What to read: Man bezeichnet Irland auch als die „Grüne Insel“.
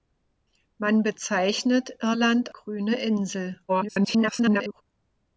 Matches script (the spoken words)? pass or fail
fail